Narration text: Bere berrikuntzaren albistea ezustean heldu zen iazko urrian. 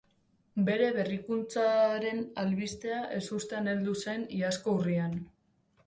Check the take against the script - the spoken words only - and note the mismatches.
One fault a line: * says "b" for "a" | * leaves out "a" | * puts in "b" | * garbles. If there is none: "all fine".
all fine